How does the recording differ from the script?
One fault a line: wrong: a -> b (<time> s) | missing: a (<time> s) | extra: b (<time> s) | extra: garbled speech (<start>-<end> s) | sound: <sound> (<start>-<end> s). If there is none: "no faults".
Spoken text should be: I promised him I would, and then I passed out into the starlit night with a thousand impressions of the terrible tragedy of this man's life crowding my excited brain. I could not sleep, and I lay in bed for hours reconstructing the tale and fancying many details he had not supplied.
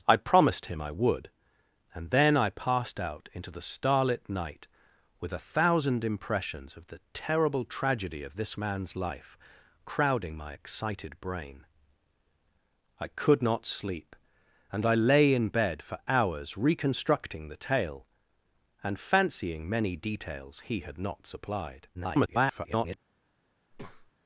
extra: garbled speech (21.9-23.0 s)
sound: breath (23.7-24.1 s)